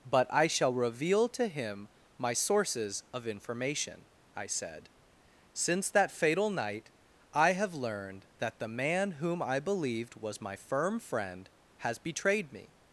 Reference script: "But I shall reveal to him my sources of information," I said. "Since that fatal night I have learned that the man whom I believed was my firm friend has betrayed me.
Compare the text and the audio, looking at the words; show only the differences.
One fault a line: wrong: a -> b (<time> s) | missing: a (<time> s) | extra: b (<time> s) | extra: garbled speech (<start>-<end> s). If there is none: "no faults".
no faults